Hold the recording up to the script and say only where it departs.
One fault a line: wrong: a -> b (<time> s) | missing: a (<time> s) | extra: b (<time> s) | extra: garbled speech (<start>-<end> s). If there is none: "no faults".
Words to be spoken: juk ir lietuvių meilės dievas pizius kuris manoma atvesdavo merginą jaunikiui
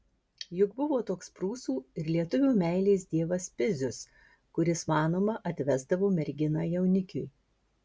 extra: buvo toks prūsų (0.8 s)